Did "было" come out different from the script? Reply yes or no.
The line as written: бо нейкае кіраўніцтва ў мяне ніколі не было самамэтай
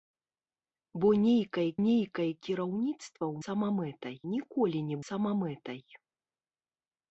yes